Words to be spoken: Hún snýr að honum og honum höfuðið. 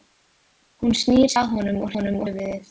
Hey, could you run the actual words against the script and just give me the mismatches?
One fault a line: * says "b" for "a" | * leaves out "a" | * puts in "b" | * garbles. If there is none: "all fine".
all fine